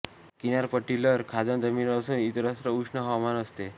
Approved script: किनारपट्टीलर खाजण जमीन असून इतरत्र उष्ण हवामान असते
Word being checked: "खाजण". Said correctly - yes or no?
yes